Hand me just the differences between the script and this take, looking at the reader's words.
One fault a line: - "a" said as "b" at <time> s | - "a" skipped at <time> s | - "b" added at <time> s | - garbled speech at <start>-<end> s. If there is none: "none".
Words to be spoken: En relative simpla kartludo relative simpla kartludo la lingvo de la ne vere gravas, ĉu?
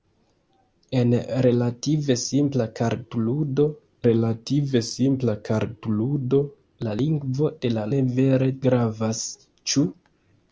none